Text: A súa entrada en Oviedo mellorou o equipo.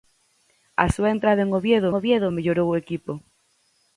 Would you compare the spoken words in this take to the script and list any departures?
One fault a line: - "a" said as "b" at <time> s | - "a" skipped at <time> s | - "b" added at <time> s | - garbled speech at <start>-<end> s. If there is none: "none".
- "Oviedo" added at 2.0 s